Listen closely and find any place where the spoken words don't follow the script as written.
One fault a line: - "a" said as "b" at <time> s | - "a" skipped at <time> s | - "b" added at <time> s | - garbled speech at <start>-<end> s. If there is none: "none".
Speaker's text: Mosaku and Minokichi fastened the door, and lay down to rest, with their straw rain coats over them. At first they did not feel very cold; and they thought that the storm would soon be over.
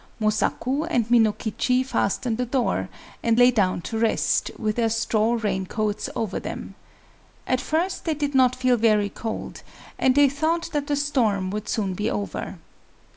none